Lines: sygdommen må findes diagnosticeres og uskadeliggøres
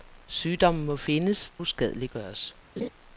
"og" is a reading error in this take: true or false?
true